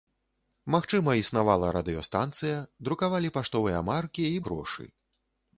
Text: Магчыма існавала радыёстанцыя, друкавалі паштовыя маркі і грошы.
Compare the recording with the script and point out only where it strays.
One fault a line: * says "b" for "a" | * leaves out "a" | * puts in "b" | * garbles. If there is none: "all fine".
all fine